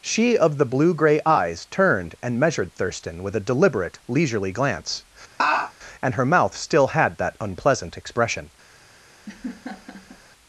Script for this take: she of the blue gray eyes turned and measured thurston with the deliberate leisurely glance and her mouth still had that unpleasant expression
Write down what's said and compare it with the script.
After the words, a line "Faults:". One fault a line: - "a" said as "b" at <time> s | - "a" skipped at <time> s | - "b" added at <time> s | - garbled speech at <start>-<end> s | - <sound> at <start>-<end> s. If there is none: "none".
she of the blue gray eyes turned and measured thurston with a deliberate leisurely glance and her mouth still had that unpleasant expression
Faults:
- "the" said as "a" at 3.4 s
- laugh at 5.4-5.7 s
- laugh at 9.3-10.2 s